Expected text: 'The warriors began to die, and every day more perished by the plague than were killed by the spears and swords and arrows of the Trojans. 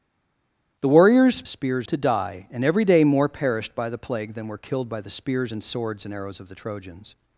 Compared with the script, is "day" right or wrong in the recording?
right